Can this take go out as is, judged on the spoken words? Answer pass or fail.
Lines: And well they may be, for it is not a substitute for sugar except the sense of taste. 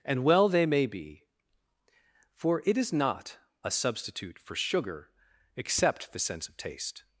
pass